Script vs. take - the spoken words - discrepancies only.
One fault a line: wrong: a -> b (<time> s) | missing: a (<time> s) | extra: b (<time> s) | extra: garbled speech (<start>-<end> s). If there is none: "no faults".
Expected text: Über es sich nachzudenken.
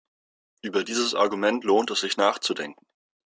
extra: dieses Argument lohnt (0.8 s)